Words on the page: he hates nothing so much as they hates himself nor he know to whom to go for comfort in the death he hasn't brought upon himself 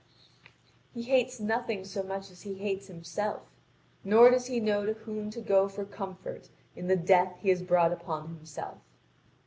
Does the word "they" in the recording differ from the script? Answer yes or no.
yes